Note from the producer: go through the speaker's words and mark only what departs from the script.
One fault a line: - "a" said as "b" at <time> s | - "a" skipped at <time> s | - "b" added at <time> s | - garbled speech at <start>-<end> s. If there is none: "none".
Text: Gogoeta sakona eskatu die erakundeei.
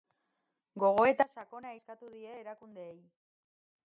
none